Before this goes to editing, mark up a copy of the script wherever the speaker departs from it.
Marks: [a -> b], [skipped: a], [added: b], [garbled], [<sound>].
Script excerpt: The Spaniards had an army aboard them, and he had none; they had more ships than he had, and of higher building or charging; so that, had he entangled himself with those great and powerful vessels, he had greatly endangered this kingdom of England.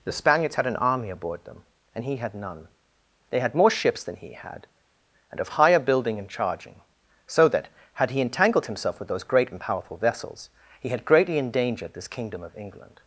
The Spaniards had an army aboard them, and he had none; they had more ships than he had, and of higher building [or -> and] charging; so that, had he entangled himself with those great and powerful vessels, he had greatly endangered this kingdom of England.